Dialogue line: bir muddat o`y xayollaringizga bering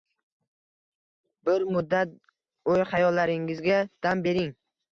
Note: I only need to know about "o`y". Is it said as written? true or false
true